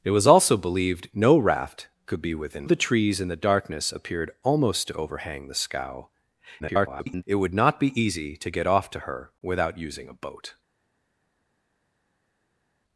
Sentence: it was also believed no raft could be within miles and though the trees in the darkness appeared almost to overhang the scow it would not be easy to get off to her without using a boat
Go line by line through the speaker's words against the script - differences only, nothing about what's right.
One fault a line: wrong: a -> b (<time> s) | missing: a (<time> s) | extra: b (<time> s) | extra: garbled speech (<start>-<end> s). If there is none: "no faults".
missing: miles and though (2.6 s)
extra: garbled speech (6.6-7.2 s)